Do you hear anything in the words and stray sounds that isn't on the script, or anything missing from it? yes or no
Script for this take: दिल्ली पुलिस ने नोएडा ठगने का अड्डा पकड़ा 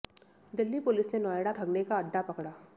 no